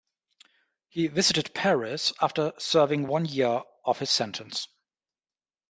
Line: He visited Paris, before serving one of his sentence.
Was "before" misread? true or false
true